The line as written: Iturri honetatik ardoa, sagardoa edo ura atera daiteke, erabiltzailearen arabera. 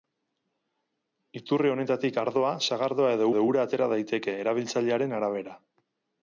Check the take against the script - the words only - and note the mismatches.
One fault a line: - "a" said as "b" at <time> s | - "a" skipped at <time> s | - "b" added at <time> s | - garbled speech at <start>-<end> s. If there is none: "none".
- "edo" added at 3.3 s